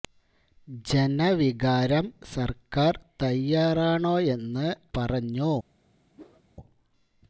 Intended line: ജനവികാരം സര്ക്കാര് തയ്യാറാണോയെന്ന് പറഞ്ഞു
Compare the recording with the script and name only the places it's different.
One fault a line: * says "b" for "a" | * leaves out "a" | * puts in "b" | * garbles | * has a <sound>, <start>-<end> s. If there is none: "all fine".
* has a whoosh, 6.1-6.4 s